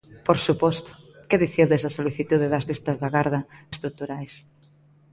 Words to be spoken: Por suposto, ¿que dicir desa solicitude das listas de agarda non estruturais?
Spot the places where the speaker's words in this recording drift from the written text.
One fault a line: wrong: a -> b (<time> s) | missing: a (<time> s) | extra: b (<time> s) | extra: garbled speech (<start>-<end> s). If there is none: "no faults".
missing: non (3.4 s)